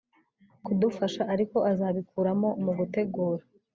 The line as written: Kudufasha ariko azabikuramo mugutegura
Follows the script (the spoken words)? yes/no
yes